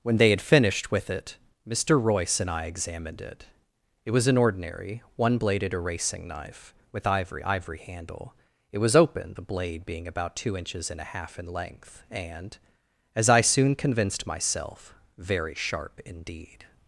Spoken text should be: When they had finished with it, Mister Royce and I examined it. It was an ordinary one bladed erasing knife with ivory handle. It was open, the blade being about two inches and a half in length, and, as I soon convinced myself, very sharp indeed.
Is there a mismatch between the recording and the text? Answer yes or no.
yes